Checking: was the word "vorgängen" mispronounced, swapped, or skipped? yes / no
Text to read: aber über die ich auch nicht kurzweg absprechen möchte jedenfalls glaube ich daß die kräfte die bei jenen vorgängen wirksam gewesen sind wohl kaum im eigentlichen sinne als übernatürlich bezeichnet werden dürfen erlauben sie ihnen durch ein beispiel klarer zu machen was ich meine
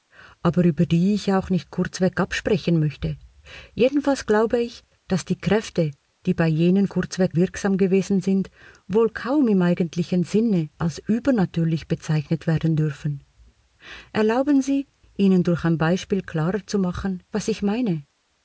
yes